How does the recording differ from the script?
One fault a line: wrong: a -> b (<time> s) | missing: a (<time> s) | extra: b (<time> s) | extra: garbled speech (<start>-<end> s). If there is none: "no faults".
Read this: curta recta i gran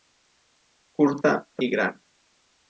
missing: recta (1.3 s)